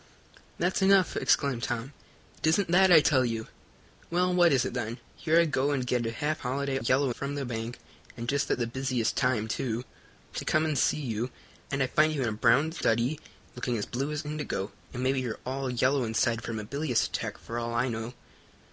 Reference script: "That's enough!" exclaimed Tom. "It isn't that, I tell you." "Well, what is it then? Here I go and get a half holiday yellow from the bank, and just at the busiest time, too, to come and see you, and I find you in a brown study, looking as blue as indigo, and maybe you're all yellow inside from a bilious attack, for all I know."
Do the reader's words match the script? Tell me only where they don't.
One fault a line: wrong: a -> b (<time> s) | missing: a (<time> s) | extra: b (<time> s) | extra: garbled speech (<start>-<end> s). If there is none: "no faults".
no faults